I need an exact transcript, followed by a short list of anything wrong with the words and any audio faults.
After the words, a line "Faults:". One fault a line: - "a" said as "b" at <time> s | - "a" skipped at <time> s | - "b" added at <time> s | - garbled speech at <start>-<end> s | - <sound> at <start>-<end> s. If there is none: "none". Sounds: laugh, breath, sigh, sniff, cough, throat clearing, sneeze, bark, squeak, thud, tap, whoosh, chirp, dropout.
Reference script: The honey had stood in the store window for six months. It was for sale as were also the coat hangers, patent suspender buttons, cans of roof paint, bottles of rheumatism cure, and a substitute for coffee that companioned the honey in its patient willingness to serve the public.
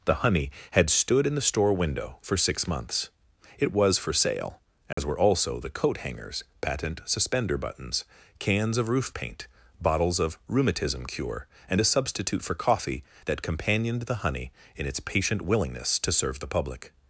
The honey had stood in the store window for six months. It was for sale as were also the coat hangers, patent suspender buttons, cans of roof paint, bottles of rheumatism cure, and a substitute for coffee that companioned the honey in its patient willingness to serve the public.
Faults:
- dropout at 4.9-5.0 s